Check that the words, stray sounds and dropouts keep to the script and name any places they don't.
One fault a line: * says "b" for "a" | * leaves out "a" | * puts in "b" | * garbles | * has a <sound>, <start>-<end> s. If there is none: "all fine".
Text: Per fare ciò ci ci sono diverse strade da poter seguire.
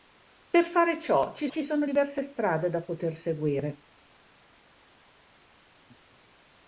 all fine